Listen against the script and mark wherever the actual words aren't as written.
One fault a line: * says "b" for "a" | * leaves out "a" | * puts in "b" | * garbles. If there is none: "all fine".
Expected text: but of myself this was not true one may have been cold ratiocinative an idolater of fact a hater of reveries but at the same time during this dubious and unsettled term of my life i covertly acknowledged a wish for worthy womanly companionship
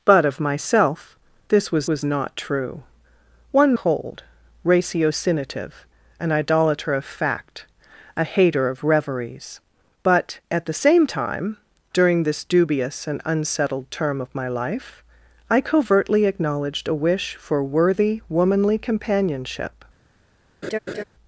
* puts in "was"
* leaves out "may have been"